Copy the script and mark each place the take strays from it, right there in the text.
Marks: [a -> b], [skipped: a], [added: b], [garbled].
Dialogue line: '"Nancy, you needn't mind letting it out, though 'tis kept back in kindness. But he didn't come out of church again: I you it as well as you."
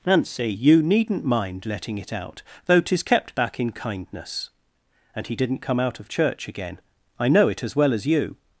'"Nancy, you needn't mind letting it out, though 'tis kept back in kindness. [But -> And] he didn't come out of church again: I [you -> know] it as well as you."